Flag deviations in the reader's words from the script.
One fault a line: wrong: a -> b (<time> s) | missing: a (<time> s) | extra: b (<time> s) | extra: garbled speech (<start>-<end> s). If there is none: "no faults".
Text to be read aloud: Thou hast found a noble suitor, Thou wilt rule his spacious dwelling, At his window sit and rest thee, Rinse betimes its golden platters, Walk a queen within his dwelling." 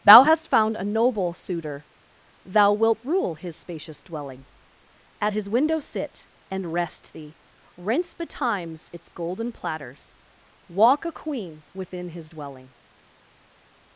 no faults